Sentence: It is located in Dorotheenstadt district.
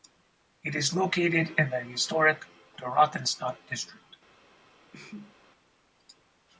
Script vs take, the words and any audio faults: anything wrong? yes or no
yes